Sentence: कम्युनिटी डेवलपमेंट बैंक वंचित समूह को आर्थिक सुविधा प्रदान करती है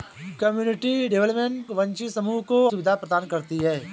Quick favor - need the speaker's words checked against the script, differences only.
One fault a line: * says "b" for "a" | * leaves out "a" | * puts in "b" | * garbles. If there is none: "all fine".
* leaves out "बैंक"
* leaves out "आर्थिक"